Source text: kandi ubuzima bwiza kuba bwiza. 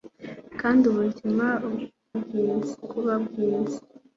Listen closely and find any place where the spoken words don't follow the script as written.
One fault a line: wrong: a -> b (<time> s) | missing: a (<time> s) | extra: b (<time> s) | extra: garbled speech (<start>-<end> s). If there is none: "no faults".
no faults